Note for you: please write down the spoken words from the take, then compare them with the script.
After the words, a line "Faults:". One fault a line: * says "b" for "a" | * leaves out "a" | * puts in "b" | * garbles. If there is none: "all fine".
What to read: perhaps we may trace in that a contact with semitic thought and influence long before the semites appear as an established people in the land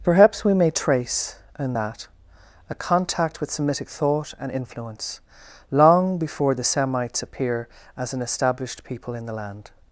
perhaps we may trace in that a contact with semitic thought and influence long before the semites appear as an established people in the land
Faults:
all fine